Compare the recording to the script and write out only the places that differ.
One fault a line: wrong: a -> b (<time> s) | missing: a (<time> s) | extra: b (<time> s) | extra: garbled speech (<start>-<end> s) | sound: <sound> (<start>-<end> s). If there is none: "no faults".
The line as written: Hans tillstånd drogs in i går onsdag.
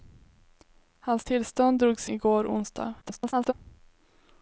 missing: in (2.1 s)
extra: garbled speech (3.0-3.5 s)